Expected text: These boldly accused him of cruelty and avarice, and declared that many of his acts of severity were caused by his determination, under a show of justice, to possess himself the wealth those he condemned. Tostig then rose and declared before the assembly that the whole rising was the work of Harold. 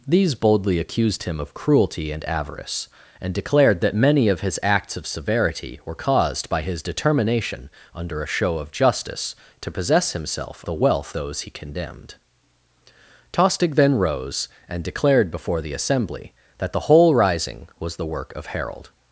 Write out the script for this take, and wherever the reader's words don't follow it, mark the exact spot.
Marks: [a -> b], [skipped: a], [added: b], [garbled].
These boldly accused him of cruelty and avarice, and declared that many of his acts of severity were caused by his determination, under a show of justice, to possess himself the wealth those he condemned. Tostig then rose and declared before the assembly that the whole rising was the work of Harold.